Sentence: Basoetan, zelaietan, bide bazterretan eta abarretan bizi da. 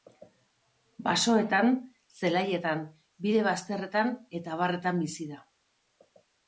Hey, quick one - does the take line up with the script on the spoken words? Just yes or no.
yes